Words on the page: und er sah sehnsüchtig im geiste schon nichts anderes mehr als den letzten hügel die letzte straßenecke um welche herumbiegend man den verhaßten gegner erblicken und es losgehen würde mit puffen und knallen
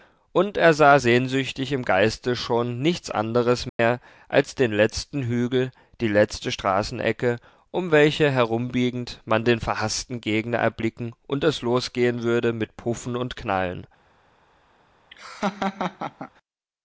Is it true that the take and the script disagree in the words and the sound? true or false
true